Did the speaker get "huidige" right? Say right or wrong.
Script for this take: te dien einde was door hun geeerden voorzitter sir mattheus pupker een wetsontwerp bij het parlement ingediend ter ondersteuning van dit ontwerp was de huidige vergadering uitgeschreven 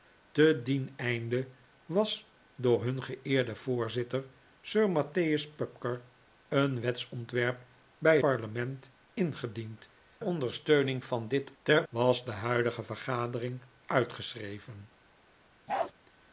right